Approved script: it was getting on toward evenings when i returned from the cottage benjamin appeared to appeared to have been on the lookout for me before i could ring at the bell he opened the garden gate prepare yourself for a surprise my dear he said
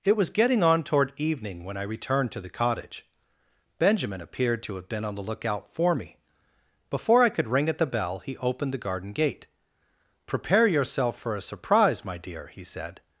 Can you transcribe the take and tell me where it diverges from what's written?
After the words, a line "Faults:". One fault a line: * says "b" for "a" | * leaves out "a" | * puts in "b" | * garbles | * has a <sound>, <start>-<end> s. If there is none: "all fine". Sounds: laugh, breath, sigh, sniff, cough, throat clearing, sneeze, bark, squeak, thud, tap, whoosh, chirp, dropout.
it was getting on toward evening when i returned to the cottage benjamin appeared to have been on the lookout for me before i could ring at the bell he opened the garden gate prepare yourself for a surprise my dear he said
Faults:
* says "evening" for "evenings"
* says "to" for "from"
* leaves out "appeared to"